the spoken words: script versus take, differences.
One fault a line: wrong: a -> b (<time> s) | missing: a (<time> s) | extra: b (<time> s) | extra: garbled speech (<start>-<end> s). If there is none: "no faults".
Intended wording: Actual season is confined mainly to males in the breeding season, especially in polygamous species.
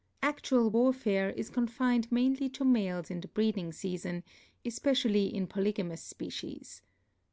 wrong: season -> warfare (0.7 s)